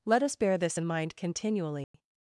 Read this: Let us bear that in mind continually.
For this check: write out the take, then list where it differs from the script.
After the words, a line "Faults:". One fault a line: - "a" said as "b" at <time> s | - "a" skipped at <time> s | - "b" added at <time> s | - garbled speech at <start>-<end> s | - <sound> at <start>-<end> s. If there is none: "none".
Let us bear this in mind continually.
Faults:
- "that" said as "this" at 0.6 s
- dropout at 1.8-1.9 s